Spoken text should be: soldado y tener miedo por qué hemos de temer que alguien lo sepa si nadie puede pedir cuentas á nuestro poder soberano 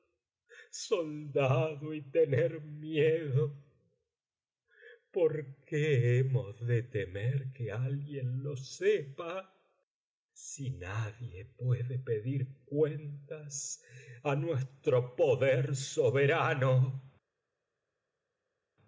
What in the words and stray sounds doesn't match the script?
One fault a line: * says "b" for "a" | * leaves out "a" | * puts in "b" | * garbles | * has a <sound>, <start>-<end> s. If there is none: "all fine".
all fine